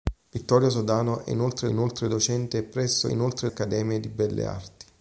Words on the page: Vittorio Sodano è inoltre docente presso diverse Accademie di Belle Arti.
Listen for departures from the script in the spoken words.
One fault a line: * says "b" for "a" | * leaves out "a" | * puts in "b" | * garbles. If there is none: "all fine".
* puts in "inoltre"
* says "inoltre" for "diverse"